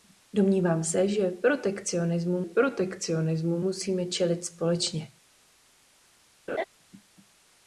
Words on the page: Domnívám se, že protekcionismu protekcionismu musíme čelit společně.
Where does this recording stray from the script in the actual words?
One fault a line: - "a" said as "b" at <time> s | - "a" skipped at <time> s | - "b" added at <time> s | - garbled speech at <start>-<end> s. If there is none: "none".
none